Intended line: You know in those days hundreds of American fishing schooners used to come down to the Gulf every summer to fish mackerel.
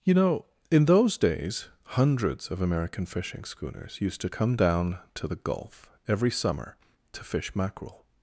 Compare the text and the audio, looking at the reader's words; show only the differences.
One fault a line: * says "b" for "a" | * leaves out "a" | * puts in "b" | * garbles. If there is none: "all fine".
all fine